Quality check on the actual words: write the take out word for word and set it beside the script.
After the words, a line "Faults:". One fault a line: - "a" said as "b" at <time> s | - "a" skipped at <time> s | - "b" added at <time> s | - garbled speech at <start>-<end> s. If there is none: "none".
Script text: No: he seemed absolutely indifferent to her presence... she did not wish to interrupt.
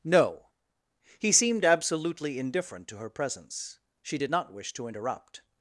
No: he seemed absolutely indifferent to her presence... she did not wish to interrupt.
Faults:
none